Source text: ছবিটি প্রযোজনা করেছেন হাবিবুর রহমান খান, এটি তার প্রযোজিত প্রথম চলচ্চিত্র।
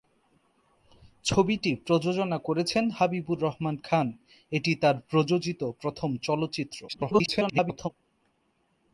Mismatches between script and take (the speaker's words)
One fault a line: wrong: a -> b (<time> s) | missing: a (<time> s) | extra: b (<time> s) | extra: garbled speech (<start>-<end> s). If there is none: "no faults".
extra: garbled speech (6.9-7.9 s)